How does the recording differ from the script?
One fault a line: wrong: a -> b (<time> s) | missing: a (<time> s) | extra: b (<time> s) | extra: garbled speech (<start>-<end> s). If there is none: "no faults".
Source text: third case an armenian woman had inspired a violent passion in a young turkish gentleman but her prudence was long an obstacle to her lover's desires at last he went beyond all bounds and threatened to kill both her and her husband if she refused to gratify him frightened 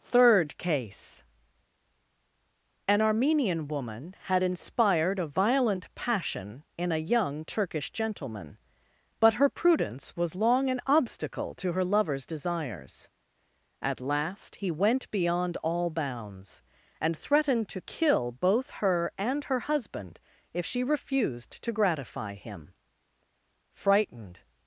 no faults